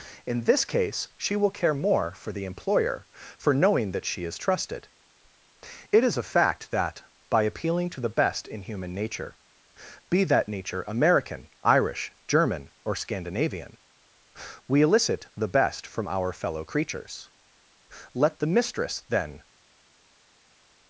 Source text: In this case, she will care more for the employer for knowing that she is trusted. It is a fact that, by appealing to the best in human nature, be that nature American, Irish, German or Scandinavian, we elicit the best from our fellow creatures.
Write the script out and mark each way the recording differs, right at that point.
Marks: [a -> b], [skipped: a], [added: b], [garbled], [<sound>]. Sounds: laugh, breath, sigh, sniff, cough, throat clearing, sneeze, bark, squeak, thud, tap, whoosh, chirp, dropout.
In this case, she will care more for the employer for knowing that she is trusted. It is a fact that, by appealing to the best in human nature, be that nature American, Irish, German or Scandinavian, we elicit the best from our fellow creatures. [added: Let the mistress then]